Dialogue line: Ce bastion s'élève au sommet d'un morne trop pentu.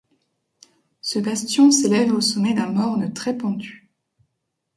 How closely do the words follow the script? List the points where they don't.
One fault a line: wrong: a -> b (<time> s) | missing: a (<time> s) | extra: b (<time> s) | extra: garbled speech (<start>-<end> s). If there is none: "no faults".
wrong: trop -> très (3.1 s)